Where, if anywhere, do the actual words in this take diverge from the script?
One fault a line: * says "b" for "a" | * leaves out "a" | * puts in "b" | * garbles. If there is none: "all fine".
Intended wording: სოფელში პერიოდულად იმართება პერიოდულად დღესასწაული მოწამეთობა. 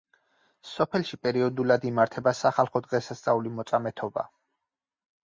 * says "სახალხო" for "პერიოდულად"